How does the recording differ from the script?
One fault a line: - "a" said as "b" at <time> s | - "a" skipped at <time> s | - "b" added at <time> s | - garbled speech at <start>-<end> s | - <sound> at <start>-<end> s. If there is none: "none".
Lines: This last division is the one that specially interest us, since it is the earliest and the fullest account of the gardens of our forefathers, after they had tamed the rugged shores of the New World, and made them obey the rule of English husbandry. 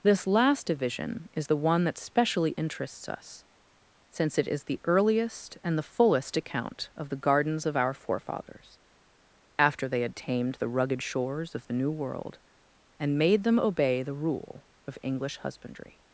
- "interest" said as "interests" at 2.6 s